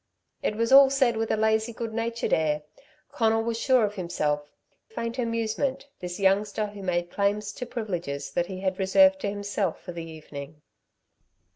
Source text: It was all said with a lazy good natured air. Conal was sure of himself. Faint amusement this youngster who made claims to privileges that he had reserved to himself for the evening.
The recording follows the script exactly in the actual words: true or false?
true